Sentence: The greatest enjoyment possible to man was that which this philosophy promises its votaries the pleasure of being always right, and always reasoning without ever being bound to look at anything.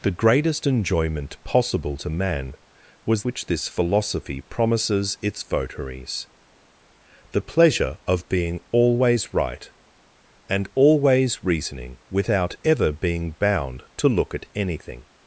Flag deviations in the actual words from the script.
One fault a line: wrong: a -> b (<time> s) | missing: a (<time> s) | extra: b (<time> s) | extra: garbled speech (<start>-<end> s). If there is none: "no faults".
missing: that (3.2 s)